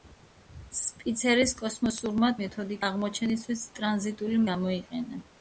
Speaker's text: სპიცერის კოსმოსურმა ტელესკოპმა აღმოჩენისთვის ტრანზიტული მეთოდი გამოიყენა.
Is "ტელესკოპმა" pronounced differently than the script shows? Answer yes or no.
yes